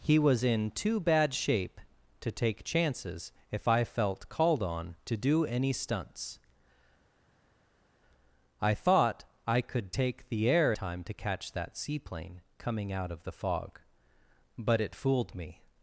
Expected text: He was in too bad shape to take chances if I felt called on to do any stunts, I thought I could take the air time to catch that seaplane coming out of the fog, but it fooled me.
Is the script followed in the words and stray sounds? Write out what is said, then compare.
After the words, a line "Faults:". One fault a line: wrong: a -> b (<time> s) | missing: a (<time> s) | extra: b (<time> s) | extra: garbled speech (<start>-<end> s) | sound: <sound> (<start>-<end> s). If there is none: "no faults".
He was in too bad shape to take chances if I felt called on to do any stunts, I thought I could take the air time to catch that seaplane coming out of the fog, but it fooled me.
Faults:
no faults